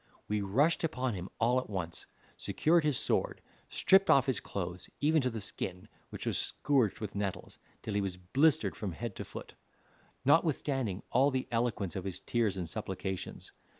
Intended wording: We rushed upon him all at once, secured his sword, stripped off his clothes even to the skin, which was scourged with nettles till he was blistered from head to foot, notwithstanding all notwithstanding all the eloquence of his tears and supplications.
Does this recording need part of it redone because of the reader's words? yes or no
yes